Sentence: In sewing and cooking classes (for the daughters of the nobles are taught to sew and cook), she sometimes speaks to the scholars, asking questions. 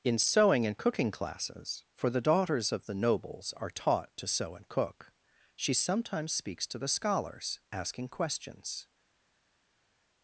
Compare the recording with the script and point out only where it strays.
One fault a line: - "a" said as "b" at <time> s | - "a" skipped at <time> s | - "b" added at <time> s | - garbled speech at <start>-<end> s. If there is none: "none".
none